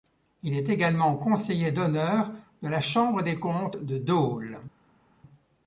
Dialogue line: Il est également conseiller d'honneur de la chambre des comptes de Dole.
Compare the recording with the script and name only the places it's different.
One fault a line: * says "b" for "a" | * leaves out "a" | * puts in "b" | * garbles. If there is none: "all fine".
all fine